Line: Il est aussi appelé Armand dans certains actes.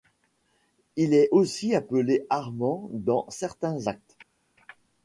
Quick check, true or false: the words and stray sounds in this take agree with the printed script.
true